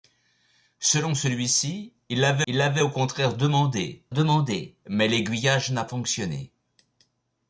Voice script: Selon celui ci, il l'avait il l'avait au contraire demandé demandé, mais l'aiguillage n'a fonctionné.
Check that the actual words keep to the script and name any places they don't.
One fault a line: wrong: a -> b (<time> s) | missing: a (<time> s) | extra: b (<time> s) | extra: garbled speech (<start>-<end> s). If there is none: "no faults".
no faults